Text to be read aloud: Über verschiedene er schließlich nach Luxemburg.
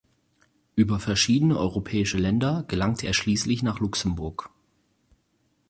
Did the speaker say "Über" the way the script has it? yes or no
yes